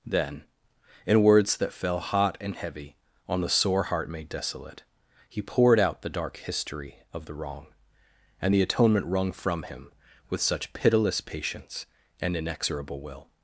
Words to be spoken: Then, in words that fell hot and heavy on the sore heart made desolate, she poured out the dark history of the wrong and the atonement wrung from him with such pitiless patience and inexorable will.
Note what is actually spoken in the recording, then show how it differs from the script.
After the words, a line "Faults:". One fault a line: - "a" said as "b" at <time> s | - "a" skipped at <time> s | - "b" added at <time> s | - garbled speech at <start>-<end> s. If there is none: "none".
Then, in words that fell hot and heavy on the sore heart made desolate, he poured out the dark history of the wrong and the atonement wrung from him with such pitiless patience and inexorable will.
Faults:
- "she" said as "he" at 5.3 s